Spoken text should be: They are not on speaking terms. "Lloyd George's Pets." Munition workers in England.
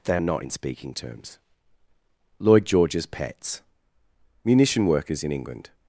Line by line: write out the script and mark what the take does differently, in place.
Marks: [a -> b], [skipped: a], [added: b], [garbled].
They are not [on -> in] speaking terms. "Lloyd George's Pets." Munition workers in England.